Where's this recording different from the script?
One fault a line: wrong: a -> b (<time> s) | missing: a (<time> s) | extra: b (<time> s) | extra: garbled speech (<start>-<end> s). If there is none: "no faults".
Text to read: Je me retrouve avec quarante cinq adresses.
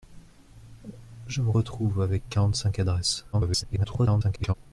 extra: garbled speech (3.3-4.5 s)